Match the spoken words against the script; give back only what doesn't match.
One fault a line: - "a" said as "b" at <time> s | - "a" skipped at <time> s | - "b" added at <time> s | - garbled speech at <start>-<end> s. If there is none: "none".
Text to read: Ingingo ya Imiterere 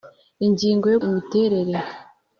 none